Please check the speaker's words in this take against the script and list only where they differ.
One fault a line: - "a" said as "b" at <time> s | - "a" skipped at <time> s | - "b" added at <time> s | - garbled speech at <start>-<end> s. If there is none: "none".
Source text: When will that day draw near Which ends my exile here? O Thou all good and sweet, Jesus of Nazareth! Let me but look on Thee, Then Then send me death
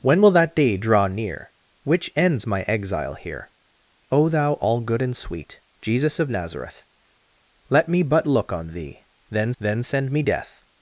none